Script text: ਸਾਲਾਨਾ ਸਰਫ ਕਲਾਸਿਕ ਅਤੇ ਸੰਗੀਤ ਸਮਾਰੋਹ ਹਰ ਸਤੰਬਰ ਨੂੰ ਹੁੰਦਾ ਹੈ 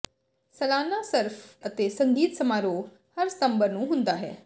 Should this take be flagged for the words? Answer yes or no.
yes